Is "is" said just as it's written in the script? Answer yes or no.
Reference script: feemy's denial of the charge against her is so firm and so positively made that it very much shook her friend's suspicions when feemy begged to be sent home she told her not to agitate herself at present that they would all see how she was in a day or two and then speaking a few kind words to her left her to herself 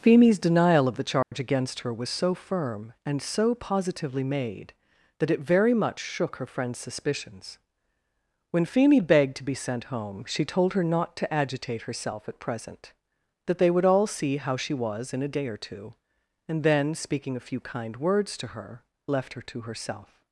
no